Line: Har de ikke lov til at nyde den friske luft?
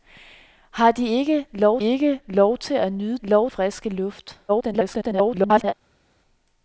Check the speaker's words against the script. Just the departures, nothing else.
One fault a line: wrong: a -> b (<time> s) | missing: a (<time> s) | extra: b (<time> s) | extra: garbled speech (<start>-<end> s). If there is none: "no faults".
extra: ikke lov (1.8 s)
wrong: den -> lov (3.2 s)
extra: garbled speech (4.5-5.7 s)